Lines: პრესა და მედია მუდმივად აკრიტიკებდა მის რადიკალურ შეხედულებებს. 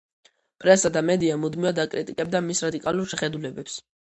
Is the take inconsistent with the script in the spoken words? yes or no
no